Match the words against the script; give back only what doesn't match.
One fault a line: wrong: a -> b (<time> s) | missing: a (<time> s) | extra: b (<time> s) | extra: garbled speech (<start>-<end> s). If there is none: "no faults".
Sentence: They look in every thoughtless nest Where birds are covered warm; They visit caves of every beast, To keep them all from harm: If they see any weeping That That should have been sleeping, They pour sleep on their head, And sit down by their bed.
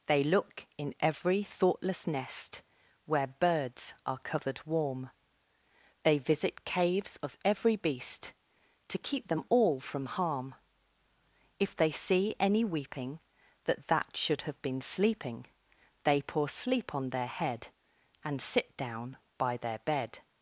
no faults